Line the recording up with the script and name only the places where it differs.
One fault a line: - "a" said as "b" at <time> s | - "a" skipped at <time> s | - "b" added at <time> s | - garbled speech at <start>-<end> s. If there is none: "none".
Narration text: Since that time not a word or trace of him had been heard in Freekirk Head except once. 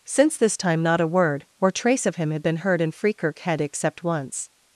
- "that" said as "this" at 0.4 s